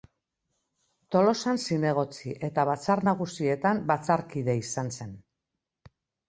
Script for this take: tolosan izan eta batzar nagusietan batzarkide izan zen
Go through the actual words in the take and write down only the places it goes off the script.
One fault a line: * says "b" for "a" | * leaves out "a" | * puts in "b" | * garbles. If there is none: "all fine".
* says "zinegotzi" for "izan"